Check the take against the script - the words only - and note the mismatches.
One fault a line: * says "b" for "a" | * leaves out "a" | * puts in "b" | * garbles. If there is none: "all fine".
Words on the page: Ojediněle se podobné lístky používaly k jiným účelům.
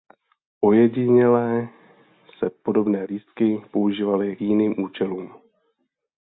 * leaves out "k"